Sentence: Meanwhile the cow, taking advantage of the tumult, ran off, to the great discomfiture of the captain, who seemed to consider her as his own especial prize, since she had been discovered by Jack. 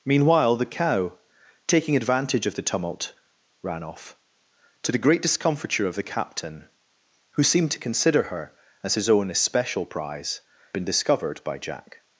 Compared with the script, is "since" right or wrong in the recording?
wrong